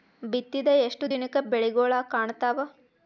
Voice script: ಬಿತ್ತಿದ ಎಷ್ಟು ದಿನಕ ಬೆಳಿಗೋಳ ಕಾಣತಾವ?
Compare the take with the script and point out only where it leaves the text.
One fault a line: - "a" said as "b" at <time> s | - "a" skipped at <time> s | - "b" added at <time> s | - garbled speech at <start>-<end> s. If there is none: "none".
none